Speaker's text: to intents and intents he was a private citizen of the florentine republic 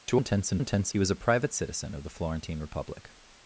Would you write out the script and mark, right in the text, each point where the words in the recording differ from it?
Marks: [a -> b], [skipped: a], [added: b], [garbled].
to intents and intents he was a private citizen of the florentine republic